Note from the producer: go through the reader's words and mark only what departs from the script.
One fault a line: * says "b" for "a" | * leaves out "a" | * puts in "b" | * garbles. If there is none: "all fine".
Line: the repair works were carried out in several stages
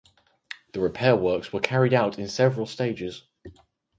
all fine